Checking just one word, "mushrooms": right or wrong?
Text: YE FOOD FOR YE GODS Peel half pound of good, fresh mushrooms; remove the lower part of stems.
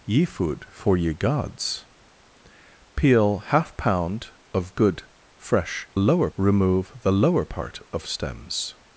wrong